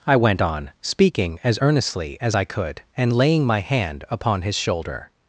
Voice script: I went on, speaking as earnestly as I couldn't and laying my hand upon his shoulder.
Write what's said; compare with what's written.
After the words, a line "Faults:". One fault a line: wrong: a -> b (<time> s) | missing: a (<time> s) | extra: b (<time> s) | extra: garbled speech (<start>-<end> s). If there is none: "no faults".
I went on, speaking as earnestly as I could and laying my hand upon his shoulder.
Faults:
wrong: couldn't -> could (2.4 s)